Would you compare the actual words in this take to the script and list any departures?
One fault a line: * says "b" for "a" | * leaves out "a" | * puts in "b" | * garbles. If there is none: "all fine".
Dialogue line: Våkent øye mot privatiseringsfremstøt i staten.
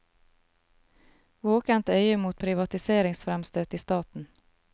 all fine